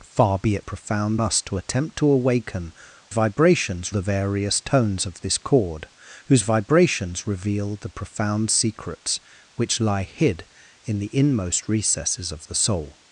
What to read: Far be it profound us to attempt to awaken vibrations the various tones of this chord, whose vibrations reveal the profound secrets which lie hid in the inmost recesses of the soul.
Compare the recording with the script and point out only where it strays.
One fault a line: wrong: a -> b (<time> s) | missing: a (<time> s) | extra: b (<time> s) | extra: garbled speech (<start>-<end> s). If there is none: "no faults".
no faults